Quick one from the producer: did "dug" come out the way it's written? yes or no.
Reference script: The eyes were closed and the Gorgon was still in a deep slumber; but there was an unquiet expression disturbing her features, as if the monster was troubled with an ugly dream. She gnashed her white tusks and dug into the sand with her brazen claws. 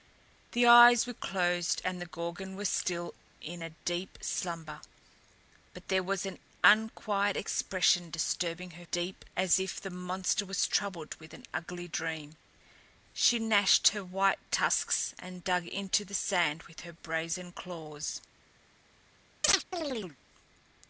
yes